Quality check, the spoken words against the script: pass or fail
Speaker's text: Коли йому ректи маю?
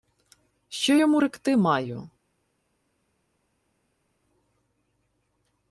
fail